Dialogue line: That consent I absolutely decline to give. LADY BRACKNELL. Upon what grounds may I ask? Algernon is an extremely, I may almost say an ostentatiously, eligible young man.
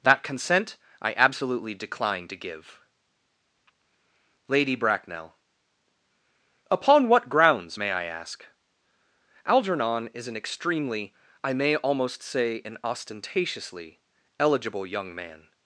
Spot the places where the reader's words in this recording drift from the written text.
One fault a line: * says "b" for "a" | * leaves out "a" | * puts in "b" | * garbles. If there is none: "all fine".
all fine